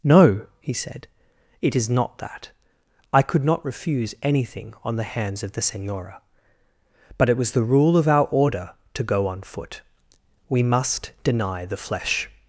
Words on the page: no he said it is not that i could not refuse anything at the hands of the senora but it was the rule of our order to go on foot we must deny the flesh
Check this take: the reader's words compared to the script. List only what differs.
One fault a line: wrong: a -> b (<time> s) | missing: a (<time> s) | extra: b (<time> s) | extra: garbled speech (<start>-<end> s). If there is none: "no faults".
wrong: at -> on (4.8 s)